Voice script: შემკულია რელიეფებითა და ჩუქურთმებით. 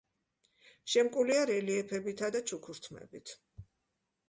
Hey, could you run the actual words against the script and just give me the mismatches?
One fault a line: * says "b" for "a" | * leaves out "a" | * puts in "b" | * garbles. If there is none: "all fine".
all fine